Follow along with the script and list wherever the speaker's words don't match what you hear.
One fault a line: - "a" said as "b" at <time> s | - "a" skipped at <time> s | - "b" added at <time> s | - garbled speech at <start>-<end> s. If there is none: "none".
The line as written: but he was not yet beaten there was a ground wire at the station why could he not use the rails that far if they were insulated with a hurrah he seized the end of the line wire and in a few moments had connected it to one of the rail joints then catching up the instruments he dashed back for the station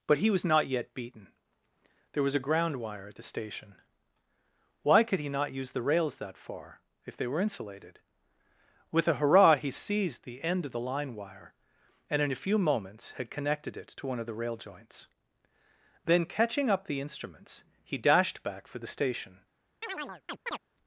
none